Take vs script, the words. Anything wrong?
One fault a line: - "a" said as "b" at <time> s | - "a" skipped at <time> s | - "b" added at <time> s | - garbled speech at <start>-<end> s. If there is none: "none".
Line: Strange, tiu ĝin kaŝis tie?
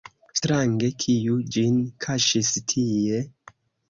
- "tiu" said as "kiu" at 1.0 s